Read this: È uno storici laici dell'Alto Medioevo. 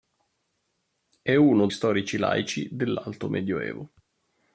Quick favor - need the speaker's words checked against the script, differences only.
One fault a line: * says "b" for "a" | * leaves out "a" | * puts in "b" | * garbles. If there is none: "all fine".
all fine